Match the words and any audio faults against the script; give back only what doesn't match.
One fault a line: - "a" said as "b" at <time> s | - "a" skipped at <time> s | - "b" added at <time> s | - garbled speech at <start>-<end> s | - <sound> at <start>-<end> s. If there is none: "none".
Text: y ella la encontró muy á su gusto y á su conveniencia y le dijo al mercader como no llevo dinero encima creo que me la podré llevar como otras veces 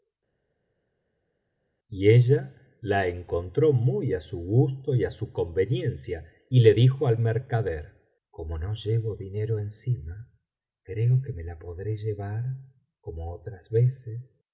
none